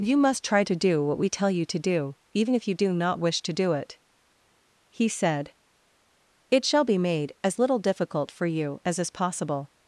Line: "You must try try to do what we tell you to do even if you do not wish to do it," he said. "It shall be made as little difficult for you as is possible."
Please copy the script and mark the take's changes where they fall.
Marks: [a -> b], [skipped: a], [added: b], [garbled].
"You must try [skipped: try] to do what we tell you to do even if you do not wish to do it," he said. "It shall be made as little difficult for you as is possible."